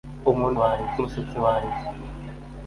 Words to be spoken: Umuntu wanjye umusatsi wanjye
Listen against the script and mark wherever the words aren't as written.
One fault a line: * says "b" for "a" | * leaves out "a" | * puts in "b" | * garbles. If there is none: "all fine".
all fine